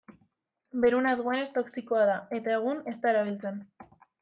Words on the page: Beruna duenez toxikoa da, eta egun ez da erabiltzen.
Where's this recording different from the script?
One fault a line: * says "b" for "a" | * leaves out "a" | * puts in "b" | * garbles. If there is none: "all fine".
all fine